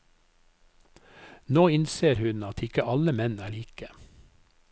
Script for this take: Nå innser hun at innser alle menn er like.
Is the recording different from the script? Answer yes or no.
yes